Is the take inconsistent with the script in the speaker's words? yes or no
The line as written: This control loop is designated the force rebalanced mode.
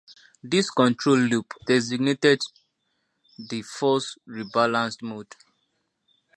yes